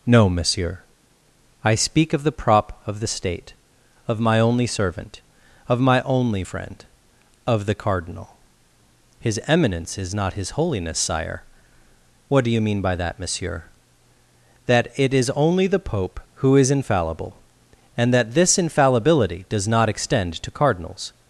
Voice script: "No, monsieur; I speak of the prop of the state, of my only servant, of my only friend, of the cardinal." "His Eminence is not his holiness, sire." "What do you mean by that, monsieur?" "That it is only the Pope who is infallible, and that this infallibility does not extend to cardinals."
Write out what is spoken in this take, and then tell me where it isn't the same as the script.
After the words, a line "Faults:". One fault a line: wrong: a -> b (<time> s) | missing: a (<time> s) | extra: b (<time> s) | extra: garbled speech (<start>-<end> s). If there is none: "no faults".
"No, monsieur; I speak of the prop of the state, of my only servant, of my only friend, of the cardinal." "His Eminence is not his holiness, sire." "What do you mean by that, monsieur?" "That it is only the Pope who is infallible, and that this infallibility does not extend to cardinals."
Faults:
no faults